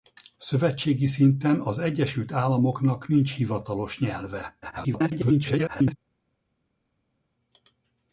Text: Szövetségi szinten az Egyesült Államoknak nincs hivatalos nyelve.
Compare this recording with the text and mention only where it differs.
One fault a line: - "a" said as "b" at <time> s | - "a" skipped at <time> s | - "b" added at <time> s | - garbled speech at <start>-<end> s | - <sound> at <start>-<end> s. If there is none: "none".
- garbled speech at 4.6-6.0 s